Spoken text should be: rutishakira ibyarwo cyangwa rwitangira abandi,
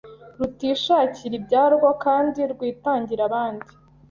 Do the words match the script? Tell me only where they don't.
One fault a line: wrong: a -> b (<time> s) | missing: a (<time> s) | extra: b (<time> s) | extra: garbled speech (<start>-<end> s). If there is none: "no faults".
wrong: cyangwa -> kandi (2.0 s)